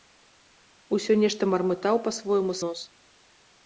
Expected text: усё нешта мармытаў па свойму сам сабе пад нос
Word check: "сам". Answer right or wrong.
wrong